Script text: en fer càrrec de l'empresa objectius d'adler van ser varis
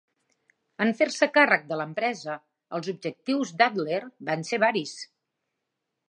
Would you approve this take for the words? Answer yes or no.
no